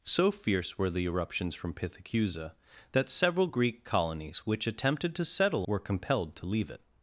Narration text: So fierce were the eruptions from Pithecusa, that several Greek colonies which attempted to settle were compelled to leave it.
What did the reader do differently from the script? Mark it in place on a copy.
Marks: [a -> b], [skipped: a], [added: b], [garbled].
So fierce were the eruptions from Pithecusa, that several Greek colonies which attempted to settle were compelled to leave it.